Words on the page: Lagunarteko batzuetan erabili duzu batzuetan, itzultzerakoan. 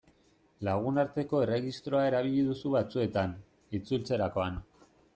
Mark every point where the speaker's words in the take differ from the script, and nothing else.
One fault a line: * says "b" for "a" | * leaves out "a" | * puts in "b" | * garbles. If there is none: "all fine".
* says "erregistroa" for "batzuetan"